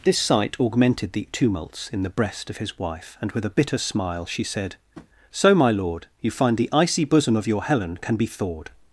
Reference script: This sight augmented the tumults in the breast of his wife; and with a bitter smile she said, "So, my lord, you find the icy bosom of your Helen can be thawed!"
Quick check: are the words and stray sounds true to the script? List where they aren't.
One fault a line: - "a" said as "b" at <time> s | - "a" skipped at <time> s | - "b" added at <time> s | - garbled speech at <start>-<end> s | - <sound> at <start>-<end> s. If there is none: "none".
- tap at 4.9-5.1 s